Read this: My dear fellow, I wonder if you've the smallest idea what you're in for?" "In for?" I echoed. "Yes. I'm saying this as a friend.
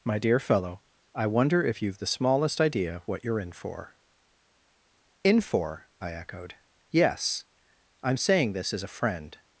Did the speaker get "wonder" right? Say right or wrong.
right